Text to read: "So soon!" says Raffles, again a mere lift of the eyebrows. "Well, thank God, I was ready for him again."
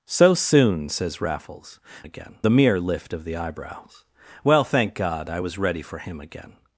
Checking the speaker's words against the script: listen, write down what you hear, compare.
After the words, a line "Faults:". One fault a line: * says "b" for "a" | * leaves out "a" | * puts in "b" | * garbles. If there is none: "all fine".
"So soon!" says Raffles, again a mere lift of the eyebrows. "Well, thank God, I was ready for him again."
Faults:
all fine